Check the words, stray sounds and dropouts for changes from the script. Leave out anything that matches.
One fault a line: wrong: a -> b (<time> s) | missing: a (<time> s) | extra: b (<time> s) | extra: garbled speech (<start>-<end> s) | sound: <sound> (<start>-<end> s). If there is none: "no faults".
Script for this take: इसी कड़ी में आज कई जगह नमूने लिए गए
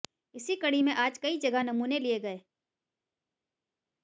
no faults